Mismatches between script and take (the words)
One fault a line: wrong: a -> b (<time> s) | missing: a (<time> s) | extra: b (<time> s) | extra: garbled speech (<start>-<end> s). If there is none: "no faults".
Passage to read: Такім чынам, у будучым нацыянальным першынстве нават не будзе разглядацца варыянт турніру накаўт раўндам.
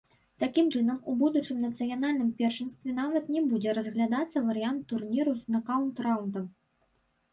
extra: з (5.4 s)